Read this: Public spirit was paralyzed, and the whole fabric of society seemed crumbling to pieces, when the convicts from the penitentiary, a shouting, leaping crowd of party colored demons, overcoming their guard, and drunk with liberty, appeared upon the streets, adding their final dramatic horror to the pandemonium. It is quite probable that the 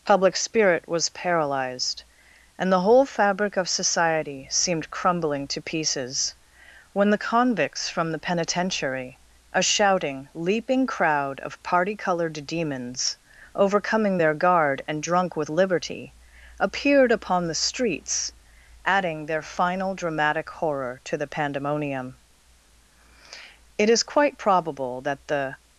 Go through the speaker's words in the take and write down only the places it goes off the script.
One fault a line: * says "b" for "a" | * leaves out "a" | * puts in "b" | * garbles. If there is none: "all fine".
all fine